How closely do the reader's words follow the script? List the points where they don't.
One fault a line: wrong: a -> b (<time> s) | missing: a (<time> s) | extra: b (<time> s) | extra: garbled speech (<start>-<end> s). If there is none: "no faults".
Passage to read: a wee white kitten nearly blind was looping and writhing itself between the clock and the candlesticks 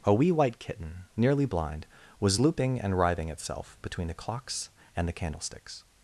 wrong: clock -> clocks (4.1 s)